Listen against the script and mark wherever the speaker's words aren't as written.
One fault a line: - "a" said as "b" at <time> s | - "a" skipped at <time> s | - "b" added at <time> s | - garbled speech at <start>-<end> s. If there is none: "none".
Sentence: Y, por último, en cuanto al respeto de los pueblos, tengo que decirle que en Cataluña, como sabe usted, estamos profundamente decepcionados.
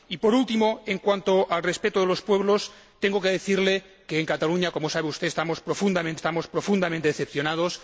- "estamos profundamente" added at 6.1 s